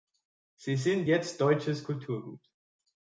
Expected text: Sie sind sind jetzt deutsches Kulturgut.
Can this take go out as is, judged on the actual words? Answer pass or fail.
fail